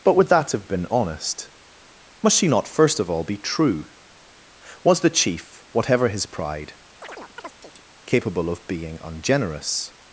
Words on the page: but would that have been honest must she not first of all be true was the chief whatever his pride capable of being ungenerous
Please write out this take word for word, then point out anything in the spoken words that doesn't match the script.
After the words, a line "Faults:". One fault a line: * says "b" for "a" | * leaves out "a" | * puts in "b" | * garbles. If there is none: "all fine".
but would that have been honest must she not first of all be true was the chief whatever his pride capable of being ungenerous
Faults:
all fine